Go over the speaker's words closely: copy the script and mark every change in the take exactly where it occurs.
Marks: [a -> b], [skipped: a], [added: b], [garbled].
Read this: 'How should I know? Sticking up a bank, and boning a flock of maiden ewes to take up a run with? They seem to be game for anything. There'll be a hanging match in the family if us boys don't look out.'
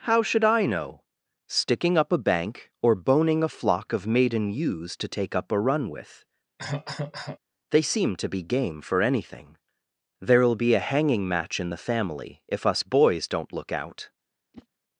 'How should I know? Sticking up a bank, [and -> or] boning a flock of maiden ewes to take up a run with? They seem to be game for anything. There'll be a hanging match in the family if us boys don't look out.'